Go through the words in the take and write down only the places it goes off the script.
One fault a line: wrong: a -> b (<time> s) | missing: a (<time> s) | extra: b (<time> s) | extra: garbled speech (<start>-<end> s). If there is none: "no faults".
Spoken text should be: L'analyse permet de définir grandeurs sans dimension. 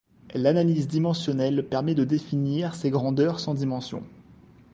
extra: dimensionnelle (0.9 s)
extra: ces (2.7 s)